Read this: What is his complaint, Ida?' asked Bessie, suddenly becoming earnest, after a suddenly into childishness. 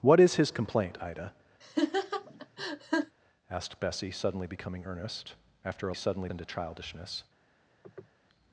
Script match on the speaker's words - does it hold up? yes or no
yes